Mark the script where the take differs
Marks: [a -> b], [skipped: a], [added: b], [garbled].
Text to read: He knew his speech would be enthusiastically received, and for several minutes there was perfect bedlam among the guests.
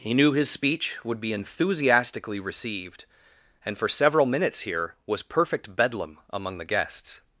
He knew his speech would be enthusiastically received, and for several minutes [there -> here] was perfect bedlam among the guests.